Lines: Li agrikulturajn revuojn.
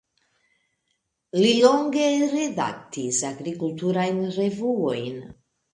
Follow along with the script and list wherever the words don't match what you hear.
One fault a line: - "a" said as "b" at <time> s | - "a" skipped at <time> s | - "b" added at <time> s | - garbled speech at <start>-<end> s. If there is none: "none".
- "longe redaktis" added at 1.7 s